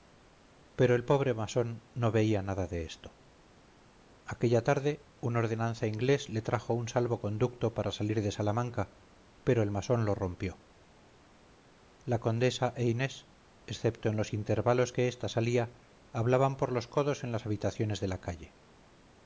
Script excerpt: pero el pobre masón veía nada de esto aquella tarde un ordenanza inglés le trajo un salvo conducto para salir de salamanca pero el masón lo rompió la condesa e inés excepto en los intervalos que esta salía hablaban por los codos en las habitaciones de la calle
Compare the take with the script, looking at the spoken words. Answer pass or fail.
fail